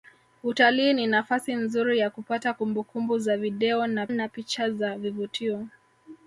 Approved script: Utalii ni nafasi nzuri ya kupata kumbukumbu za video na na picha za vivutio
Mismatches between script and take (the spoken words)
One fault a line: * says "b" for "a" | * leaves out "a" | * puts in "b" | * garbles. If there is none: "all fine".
all fine